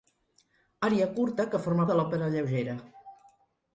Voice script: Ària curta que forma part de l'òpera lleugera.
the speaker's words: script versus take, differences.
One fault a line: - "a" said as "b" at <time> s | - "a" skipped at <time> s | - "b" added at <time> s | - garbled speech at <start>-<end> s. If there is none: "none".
- "part" skipped at 1.9 s